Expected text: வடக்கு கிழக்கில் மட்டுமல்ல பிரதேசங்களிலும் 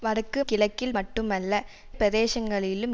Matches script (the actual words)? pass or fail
pass